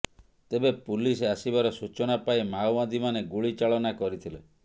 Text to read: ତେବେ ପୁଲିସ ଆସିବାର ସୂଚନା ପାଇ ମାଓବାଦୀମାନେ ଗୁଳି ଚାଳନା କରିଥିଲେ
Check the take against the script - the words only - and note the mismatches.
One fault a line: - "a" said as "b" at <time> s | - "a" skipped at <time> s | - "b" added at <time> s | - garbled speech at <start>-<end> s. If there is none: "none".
none